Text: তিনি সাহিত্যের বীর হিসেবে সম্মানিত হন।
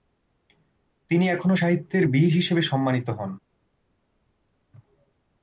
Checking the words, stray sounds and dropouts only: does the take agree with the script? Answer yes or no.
no